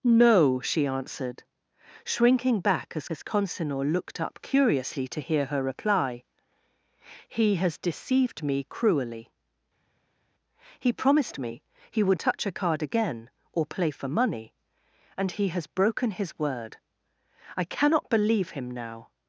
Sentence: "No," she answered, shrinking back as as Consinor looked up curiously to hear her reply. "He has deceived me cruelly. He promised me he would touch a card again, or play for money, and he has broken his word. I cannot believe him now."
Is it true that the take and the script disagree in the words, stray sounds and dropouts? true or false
false